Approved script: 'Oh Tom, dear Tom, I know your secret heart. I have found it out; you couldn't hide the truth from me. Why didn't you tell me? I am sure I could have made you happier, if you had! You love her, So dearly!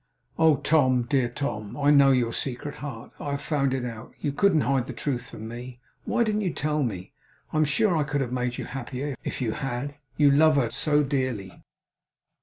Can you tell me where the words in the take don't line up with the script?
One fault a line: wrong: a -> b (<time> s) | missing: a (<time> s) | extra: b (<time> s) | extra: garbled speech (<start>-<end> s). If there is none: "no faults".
no faults